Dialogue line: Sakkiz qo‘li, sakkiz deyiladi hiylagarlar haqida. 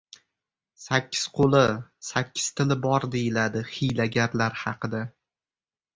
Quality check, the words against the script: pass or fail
fail